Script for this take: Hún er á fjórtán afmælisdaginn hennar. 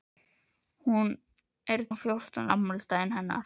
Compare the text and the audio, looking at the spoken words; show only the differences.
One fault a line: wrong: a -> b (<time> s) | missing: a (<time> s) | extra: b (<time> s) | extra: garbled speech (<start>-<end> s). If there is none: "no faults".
no faults